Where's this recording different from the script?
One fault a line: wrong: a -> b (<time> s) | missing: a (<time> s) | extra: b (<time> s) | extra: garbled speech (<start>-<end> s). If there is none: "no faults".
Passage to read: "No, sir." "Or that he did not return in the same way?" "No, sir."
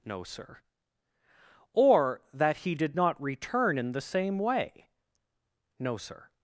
no faults